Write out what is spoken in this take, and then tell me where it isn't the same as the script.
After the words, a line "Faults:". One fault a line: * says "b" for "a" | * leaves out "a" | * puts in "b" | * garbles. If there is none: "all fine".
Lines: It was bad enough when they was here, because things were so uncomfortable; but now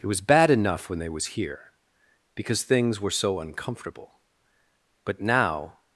It was bad enough when they was here, because things were so uncomfortable; but now
Faults:
all fine